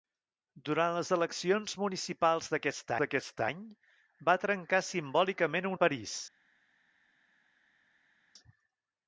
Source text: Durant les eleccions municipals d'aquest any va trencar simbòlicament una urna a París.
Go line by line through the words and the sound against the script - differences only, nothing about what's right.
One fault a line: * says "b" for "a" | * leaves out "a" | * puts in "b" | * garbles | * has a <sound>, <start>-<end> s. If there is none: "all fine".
* puts in "d'aquest"
* leaves out "una urna"